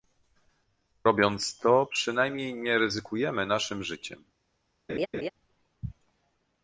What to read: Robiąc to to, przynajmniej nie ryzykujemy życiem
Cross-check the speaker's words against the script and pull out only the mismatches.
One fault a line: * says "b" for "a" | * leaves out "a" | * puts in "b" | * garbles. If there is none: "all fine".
* leaves out "to"
* puts in "naszym"